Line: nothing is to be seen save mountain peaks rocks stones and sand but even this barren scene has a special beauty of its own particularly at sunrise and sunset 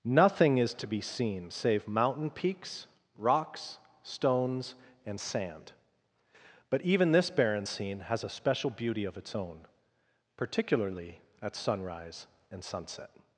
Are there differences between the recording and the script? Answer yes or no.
no